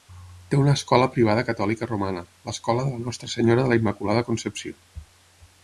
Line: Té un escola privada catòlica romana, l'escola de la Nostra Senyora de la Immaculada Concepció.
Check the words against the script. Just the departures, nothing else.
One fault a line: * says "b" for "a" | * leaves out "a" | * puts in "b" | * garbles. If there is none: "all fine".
* says "una" for "un"